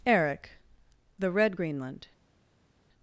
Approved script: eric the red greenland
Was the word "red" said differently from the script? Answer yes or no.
no